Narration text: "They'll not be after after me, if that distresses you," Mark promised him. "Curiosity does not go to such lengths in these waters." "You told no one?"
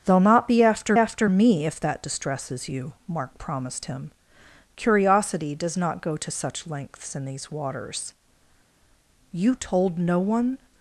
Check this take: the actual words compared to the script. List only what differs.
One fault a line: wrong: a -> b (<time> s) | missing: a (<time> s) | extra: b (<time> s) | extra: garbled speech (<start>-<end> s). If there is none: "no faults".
no faults